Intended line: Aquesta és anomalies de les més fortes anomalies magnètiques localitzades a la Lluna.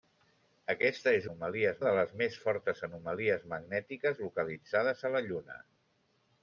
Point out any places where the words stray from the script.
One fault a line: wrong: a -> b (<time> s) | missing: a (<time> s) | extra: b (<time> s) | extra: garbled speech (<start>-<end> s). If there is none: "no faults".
no faults